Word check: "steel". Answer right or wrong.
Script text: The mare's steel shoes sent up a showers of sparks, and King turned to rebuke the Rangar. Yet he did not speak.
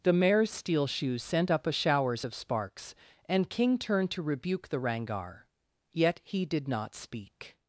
right